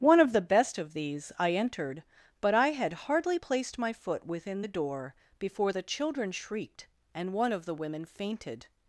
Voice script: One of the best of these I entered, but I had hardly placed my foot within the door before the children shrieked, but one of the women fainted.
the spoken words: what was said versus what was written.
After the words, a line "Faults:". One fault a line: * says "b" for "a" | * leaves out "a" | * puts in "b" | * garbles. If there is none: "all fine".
One of the best of these I entered, but I had hardly placed my foot within the door before the children shrieked, and one of the women fainted.
Faults:
* says "and" for "but"